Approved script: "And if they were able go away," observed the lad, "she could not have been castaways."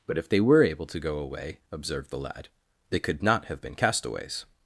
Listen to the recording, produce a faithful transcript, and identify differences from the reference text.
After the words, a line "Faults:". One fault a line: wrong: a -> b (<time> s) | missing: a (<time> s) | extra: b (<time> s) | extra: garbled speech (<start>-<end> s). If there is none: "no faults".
"But if they were able to go away," observed the lad, "they could not have been castaways."
Faults:
wrong: And -> But (0.1 s)
extra: to (0.9 s)
wrong: she -> they (2.9 s)